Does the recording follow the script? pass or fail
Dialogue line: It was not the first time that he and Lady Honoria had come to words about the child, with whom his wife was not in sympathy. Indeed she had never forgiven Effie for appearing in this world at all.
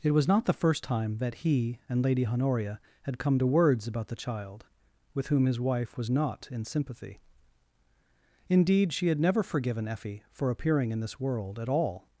pass